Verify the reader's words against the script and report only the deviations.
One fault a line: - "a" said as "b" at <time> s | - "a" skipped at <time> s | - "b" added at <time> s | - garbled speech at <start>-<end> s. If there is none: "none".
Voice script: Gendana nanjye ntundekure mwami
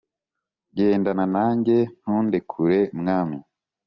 none